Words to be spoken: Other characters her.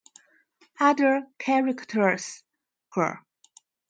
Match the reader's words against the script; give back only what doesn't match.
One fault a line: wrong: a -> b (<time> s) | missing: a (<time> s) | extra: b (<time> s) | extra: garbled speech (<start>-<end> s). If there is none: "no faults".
no faults